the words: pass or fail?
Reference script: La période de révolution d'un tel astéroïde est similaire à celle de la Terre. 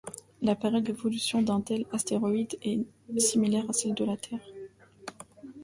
fail